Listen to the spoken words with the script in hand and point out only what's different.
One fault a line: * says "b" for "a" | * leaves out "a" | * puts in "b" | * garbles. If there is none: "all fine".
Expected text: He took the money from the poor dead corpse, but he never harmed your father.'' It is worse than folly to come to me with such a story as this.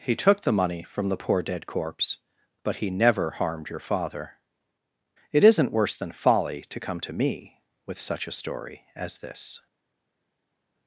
* says "isn't" for "is"